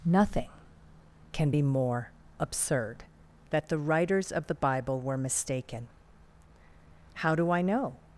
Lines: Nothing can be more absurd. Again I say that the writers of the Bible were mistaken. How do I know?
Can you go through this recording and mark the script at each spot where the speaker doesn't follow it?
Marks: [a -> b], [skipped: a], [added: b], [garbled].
Nothing can be more absurd. [skipped: Again I say] that the writers of the Bible were mistaken. How do I know?